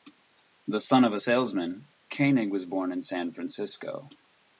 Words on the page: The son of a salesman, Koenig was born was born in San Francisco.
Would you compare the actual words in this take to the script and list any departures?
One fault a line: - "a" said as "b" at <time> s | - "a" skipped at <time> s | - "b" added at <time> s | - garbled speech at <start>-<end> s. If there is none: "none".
- "was born" skipped at 2.9 s